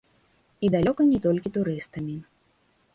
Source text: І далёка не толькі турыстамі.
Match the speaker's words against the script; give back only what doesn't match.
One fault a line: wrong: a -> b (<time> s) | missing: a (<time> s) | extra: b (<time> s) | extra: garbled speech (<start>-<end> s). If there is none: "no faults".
no faults